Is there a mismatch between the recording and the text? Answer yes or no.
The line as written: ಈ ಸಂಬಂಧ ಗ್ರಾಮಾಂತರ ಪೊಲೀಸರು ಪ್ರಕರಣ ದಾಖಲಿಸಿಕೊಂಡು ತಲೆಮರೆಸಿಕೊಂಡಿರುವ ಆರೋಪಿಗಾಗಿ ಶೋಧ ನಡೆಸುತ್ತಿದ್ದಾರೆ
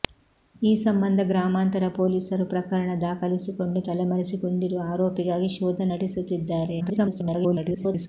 yes